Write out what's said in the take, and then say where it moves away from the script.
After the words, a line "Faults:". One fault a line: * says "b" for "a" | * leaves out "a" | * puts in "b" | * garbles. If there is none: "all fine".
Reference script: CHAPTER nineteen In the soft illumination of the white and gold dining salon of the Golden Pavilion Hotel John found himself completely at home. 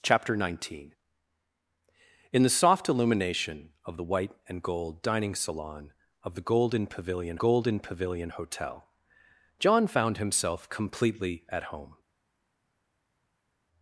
CHAPTER nineteen In the soft illumination of the white and gold dining salon of the Golden Pavilion Golden Pavilion Hotel John found himself completely at home.
Faults:
* puts in "Golden Pavilion"